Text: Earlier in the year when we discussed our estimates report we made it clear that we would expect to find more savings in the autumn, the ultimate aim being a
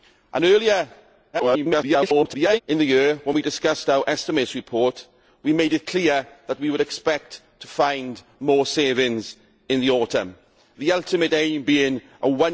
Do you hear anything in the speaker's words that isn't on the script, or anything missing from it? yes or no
yes